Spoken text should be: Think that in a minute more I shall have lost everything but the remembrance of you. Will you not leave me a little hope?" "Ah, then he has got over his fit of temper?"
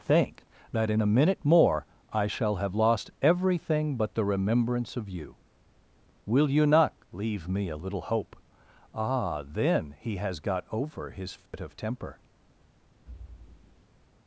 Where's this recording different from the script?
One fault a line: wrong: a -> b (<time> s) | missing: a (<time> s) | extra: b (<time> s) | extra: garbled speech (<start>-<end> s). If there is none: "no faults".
no faults